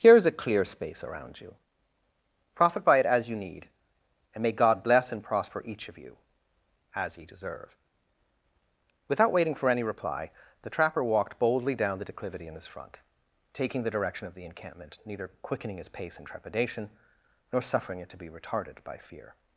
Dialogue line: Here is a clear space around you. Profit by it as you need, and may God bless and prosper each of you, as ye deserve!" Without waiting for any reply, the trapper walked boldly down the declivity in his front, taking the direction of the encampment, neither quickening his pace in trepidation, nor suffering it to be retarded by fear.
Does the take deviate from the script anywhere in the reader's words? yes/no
no